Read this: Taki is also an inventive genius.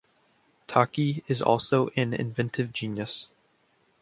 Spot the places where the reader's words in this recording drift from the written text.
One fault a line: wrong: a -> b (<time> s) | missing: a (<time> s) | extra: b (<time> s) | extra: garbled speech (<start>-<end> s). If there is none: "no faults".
no faults